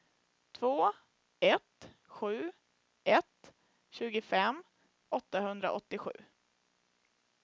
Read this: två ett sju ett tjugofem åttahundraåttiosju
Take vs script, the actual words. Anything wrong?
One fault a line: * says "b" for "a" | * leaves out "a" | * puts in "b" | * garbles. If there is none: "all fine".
all fine